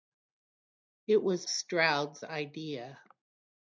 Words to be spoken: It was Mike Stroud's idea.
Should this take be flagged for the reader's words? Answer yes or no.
yes